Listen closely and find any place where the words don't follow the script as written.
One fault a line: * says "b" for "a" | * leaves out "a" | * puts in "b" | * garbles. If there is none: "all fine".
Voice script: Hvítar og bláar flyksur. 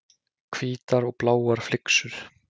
all fine